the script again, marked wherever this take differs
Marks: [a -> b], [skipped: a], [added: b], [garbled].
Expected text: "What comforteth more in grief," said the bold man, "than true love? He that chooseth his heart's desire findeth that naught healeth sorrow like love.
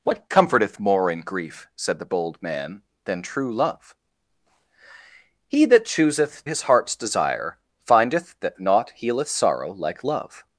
"What comforteth more in grief," said the bold man, "than true love? He that chooseth his heart's desire findeth that naught healeth sorrow like love.